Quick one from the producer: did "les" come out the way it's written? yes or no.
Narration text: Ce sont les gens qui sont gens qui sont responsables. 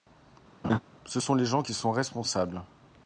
yes